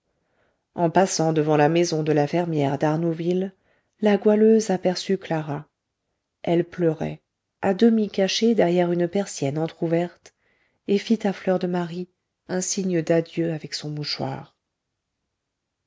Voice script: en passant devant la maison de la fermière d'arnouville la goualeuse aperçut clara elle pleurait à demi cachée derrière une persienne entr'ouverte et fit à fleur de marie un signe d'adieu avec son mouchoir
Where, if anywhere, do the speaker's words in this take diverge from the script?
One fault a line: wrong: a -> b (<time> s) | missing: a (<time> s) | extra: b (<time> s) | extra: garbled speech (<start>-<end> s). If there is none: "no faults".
no faults